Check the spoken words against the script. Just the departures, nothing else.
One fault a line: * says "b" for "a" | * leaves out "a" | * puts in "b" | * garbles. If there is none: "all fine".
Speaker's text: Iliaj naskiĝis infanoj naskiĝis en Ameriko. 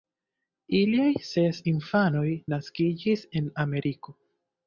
* says "ses" for "naskiĝis"